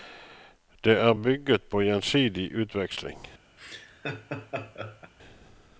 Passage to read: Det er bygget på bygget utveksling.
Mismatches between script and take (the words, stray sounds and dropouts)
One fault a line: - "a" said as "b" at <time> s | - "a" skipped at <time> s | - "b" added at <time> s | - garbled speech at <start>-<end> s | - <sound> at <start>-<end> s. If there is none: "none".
- "bygget" said as "gjensidig" at 1.8 s
- laugh at 3.6-5.1 s